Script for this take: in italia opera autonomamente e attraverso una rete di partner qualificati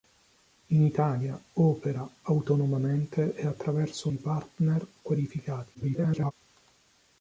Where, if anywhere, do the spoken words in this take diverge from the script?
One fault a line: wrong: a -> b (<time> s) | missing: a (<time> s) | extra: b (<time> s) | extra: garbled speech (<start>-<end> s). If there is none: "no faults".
missing: una rete (4.1 s)
extra: garbled speech (5.7-6.3 s)